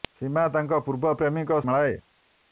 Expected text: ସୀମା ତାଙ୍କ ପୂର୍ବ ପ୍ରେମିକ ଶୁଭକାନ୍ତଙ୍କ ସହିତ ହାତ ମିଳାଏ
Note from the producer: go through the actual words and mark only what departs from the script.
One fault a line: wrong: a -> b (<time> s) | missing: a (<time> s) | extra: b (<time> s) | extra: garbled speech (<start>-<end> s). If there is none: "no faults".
missing: ଶୁଭକାନ୍ତଙ୍କ ସହିତ ହାତ (1.6 s)